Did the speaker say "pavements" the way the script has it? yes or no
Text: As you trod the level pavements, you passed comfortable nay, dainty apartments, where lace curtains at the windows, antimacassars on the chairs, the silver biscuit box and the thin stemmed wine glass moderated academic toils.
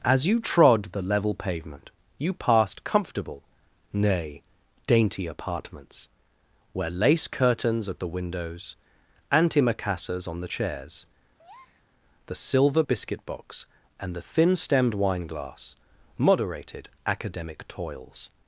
no